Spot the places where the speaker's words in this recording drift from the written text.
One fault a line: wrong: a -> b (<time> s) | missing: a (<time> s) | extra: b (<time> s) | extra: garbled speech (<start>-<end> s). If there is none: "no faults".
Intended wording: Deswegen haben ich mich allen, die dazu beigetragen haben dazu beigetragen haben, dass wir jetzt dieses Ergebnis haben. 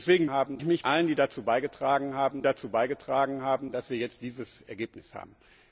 no faults